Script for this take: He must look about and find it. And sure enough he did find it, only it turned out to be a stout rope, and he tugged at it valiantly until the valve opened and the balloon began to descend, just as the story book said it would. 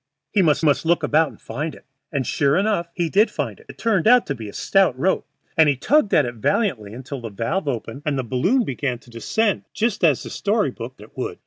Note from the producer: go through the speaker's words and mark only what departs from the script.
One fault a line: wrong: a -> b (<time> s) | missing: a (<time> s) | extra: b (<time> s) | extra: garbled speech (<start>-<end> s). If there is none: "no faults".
extra: must (0.6 s)
missing: only (3.7 s)
missing: said (11.0 s)